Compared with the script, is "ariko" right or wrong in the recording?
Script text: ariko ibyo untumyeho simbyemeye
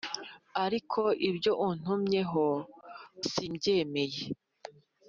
right